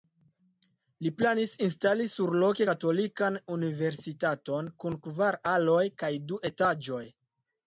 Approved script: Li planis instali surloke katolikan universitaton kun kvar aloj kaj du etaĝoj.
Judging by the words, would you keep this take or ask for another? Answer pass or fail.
pass